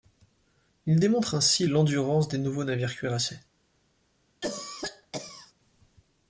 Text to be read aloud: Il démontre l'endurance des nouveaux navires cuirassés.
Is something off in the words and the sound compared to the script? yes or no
yes